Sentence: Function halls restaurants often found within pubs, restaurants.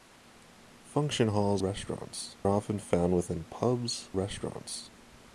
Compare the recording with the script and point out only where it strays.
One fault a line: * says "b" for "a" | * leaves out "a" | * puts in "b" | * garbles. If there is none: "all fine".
all fine